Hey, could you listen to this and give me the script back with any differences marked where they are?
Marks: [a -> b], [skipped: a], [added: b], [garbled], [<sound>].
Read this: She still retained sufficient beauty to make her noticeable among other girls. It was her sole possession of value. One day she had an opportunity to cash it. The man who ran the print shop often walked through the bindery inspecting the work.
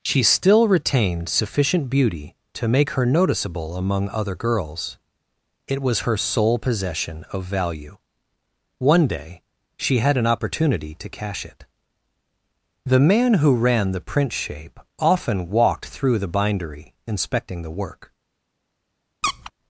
She still retained sufficient beauty to make her noticeable among other girls. It was her sole possession of value. One day she had an opportunity to cash it. The man who ran the print [shop -> shape] often walked through the bindery inspecting the work. [squeak]